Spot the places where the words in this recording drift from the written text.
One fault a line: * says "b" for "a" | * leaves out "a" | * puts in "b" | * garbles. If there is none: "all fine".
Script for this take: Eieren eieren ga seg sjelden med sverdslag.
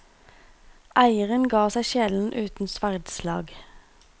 * leaves out "eieren"
* says "uten" for "med"